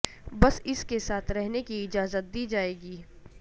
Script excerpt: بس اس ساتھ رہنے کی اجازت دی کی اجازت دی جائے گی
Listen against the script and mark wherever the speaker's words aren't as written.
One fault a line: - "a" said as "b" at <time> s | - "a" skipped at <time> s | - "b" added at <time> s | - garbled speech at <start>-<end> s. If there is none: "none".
- "کے" added at 0.8 s
- "کی اجازت دی" skipped at 2.5 s